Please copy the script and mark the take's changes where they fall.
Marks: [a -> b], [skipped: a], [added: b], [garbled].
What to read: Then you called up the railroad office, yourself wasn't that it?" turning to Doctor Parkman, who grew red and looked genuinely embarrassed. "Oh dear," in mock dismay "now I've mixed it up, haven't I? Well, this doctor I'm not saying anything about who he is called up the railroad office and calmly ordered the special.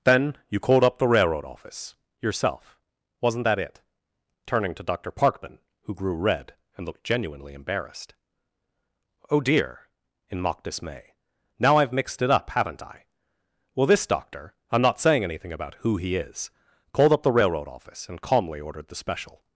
Then you called up the railroad office, yourself wasn't that it?" turning to Doctor Parkman, who grew red and looked genuinely embarrassed. "Oh dear," in mock dismay "now I've mixed it up, haven't I? Well, this doctor I'm not saying anything about who he is called up the railroad office and calmly ordered the special.